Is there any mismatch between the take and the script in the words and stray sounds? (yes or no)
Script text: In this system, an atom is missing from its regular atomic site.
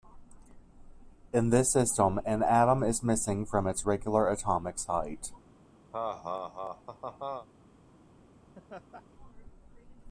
yes